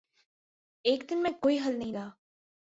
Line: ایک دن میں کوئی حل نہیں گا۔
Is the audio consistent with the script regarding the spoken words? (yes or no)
yes